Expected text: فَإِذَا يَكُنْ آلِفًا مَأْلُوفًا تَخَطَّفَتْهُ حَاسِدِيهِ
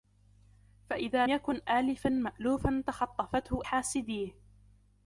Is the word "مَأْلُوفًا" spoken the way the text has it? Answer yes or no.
yes